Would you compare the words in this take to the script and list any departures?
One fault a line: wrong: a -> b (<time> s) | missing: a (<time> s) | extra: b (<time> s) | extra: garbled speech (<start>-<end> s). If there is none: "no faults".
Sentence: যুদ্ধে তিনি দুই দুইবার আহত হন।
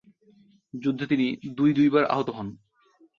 no faults